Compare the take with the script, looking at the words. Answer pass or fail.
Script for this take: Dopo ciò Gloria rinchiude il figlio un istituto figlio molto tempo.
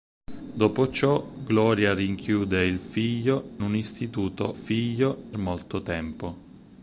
pass